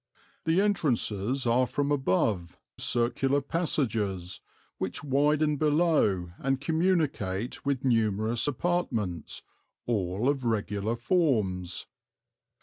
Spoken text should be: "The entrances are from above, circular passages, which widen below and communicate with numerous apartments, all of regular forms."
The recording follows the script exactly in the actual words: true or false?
true